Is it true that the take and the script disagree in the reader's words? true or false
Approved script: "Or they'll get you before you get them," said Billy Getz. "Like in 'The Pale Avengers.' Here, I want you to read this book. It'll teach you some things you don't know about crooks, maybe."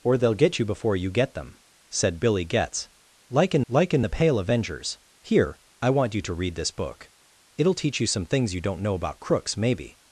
true